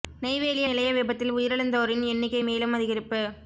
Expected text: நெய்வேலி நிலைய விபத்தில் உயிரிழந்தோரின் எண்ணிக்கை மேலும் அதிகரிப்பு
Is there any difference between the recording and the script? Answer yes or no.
no